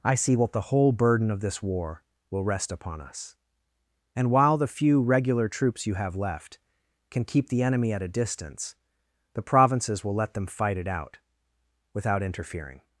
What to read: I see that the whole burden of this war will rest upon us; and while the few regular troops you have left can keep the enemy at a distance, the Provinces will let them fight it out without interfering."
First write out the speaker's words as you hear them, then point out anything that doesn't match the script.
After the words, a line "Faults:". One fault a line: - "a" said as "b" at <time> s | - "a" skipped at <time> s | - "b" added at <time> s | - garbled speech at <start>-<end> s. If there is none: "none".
I see what the whole burden of this war will rest upon us; and while the few regular troops you have left can keep the enemy at a distance, the Provinces will let them fight it out without interfering."
Faults:
- "that" said as "what" at 0.3 s